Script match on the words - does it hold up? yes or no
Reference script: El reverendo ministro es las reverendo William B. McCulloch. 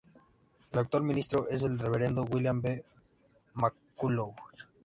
no